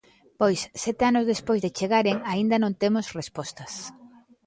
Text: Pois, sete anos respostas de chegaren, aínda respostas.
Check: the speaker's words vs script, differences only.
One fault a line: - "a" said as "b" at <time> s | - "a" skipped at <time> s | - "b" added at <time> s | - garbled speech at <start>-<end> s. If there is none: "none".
- "respostas" said as "despois" at 1.3 s
- "non temos" added at 2.6 s